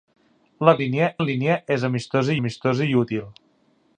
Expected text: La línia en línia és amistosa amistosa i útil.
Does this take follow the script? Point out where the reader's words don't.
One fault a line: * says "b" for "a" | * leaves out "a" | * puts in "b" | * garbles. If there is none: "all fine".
all fine